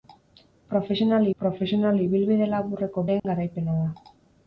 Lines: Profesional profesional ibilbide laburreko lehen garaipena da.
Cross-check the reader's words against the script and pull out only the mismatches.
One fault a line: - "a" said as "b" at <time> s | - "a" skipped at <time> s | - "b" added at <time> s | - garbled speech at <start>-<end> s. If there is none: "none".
none